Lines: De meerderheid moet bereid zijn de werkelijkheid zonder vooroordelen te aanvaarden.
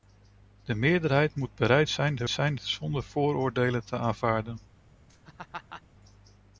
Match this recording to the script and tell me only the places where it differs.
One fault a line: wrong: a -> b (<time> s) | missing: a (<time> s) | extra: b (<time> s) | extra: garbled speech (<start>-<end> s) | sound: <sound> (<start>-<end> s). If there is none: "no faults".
wrong: werkelijkheid -> zijn (2.3 s)
sound: laugh (5.1-5.8 s)